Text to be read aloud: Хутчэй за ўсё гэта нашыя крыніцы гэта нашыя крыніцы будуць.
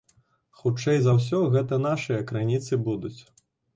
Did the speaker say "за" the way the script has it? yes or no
yes